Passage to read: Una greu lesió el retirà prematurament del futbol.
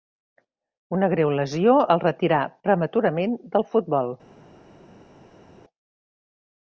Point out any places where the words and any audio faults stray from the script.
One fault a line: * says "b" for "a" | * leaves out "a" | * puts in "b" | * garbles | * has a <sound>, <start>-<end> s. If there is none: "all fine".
all fine